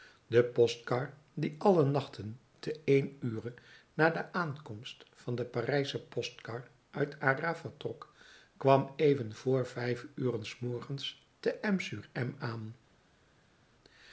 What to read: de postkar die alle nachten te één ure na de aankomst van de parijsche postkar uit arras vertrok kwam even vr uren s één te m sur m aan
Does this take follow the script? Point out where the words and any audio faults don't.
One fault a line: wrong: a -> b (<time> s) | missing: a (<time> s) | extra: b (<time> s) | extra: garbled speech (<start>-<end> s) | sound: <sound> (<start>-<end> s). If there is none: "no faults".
extra: vijf (9.6 s)
wrong: één -> morgens (10.6 s)